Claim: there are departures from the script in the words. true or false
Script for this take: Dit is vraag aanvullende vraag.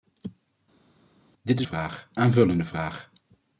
false